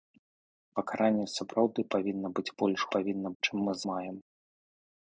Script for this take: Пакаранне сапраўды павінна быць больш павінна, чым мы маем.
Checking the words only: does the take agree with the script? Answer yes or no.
yes